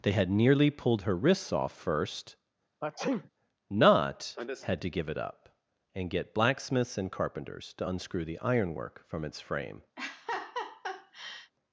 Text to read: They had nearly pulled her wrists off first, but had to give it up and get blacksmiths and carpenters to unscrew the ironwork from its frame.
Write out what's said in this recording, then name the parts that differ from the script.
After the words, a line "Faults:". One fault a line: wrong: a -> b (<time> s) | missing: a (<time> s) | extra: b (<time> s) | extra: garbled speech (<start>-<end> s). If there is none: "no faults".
They had nearly pulled her wrists off first, not had to give it up and get blacksmiths and carpenters to unscrew the ironwork from its frame.
Faults:
wrong: but -> not (3.7 s)